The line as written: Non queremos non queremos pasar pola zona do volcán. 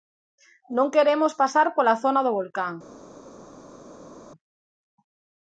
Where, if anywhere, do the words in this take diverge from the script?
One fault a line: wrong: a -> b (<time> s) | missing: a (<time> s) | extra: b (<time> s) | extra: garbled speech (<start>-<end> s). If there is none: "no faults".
missing: non queremos (1.3 s)